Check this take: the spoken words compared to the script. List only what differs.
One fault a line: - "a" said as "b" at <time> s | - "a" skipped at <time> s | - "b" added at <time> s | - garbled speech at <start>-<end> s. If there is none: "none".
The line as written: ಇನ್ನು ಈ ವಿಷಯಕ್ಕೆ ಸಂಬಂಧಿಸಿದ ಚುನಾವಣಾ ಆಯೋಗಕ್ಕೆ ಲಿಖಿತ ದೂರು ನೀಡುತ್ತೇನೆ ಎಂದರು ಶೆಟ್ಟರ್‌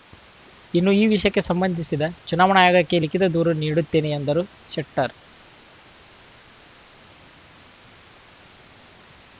none